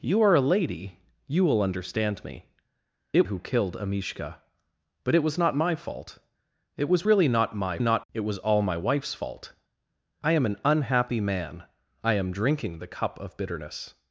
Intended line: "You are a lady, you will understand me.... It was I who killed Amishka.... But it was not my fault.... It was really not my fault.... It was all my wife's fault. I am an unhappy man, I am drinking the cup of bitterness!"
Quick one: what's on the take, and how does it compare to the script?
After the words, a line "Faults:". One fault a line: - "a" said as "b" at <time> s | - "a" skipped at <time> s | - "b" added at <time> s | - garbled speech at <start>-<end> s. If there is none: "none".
"You are a lady, you will understand me.... It who killed Amishka.... But it was not my fault.... It was really not my not.... It was all my wife's fault. I am an unhappy man, I am drinking the cup of bitterness!"
Faults:
- "was I" skipped at 3.3 s
- "fault" said as "not" at 7.8 s